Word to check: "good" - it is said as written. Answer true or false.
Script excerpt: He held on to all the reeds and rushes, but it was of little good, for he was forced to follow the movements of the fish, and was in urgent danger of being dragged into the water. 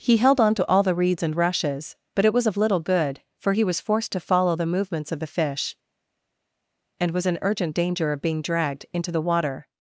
true